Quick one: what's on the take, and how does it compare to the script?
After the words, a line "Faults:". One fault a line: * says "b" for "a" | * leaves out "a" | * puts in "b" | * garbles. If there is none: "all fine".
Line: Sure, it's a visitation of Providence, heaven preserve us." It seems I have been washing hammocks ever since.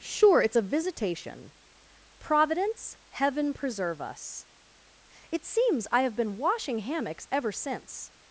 Sure, it's a visitation Providence, heaven preserve us." It seems I have been washing hammocks ever since.
Faults:
* leaves out "of"